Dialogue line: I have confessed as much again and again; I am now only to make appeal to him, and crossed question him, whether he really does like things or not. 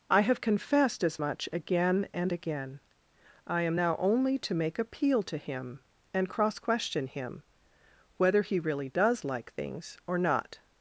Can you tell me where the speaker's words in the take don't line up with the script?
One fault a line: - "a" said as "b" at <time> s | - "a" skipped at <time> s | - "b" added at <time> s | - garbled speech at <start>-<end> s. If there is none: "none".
- "crossed" said as "cross" at 6.3 s